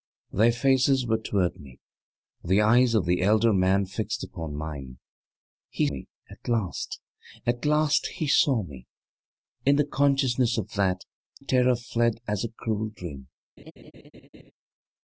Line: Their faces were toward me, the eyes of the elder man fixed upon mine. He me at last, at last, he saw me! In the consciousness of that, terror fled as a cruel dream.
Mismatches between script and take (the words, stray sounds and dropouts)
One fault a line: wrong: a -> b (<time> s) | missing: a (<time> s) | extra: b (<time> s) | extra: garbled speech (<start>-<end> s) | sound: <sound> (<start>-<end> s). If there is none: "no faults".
sound: laugh (13.6-14.5 s)